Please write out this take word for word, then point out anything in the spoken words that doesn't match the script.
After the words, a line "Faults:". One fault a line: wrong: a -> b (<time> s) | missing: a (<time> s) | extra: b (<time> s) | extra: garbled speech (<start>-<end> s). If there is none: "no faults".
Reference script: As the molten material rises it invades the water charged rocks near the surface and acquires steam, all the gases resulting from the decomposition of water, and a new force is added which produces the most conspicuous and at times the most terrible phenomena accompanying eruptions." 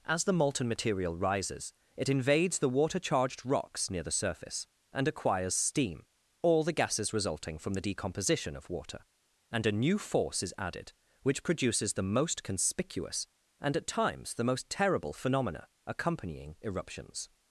As the molten material rises it invades the water charged rocks near the surface and acquires steam, all the gases resulting from the decomposition of water, and a new force is added which produces the most conspicuous and at times the most terrible phenomena accompanying eruptions."
Faults:
no faults